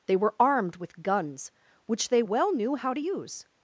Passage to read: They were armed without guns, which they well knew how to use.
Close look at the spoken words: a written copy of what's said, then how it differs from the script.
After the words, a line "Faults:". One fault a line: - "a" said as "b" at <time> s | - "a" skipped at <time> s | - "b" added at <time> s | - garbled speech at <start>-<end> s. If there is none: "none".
They were armed with guns, which they well knew how to use.
Faults:
- "without" said as "with" at 0.8 s